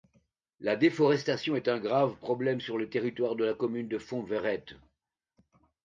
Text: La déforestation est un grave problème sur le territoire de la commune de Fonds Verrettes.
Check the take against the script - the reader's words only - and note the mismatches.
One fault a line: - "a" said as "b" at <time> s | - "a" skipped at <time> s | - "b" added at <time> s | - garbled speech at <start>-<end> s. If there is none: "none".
none